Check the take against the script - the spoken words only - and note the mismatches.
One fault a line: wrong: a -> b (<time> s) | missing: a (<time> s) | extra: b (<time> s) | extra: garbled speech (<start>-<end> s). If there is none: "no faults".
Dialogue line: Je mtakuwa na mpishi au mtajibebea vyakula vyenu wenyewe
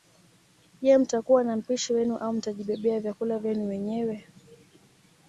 extra: wenu (1.9 s)